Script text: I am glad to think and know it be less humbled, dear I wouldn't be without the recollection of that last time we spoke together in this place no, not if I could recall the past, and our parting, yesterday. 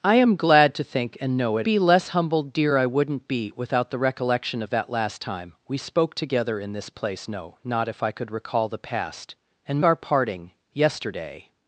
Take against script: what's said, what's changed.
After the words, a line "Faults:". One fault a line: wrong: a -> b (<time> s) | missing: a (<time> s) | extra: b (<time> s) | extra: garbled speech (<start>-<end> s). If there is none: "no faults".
I am glad to think and know it be less humbled, dear I wouldn't be without the recollection of that last time we spoke together in this place no, not if I could recall the past, and our parting, yesterday.
Faults:
no faults